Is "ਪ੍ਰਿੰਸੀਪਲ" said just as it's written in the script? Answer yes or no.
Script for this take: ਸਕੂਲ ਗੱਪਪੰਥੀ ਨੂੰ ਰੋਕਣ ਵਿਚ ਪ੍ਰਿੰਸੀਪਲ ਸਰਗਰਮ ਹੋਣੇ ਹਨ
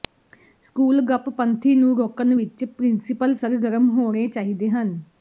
yes